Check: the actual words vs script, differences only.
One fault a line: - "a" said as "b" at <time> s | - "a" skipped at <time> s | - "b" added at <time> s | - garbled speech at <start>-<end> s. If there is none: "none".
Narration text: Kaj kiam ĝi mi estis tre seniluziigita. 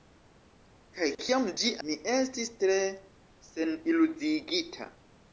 none